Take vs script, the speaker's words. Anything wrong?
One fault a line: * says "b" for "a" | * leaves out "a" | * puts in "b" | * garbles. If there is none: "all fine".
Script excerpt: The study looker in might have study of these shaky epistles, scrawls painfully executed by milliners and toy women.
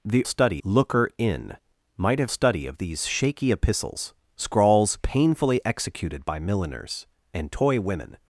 all fine